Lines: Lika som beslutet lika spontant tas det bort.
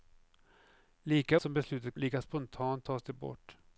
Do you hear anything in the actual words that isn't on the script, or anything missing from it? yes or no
no